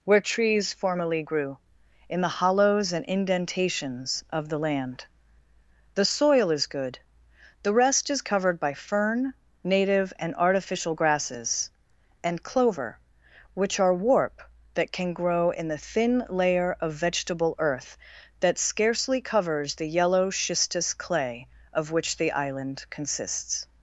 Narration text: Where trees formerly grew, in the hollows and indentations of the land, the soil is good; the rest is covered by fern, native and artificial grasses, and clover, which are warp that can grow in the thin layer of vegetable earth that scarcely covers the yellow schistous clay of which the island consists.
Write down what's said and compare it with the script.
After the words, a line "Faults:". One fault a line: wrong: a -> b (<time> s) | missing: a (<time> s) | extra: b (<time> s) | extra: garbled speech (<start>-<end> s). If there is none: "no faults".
Where trees formerly grew, in the hollows and indentations of the land, the soil is good; the rest is covered by fern, native and artificial grasses, and clover, which are warp that can grow in the thin layer of vegetable earth that scarcely covers the yellow schistous clay of which the island consists.
Faults:
no faults